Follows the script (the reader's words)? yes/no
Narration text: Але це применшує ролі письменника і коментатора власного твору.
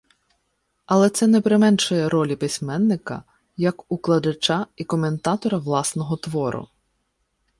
no